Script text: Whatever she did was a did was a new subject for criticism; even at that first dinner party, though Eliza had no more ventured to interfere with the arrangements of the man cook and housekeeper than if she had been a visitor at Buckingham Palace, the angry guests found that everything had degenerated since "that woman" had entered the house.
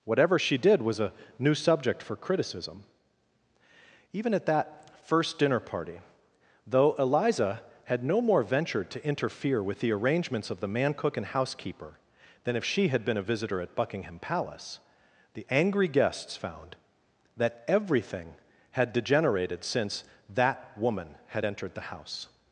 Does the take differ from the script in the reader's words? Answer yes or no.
yes